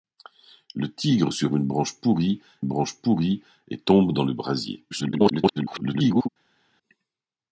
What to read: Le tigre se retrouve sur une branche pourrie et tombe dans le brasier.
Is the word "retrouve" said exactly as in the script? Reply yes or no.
no